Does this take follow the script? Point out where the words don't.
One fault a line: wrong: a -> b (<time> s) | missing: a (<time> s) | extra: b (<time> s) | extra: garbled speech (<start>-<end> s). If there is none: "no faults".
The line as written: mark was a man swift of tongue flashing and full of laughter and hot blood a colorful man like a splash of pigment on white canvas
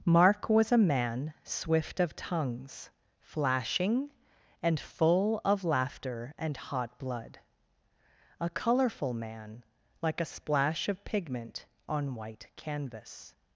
wrong: tongue -> tongues (2.1 s)